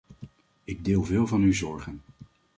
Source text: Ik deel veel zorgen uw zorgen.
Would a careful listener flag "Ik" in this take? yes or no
no